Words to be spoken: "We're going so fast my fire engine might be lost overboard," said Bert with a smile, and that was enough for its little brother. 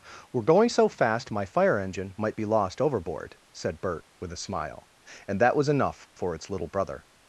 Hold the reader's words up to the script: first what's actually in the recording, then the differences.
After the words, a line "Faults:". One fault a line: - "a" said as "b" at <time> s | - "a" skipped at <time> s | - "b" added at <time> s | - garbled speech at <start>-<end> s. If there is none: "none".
"We're going so fast my fire engine might be lost overboard," said Bert with a smile, and that was enough for its little brother.
Faults:
none